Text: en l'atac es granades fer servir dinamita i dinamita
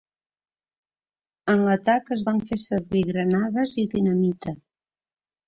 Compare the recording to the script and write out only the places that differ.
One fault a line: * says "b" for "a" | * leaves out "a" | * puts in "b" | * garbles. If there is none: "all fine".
* says "van" for "granades"
* says "granades" for "dinamita"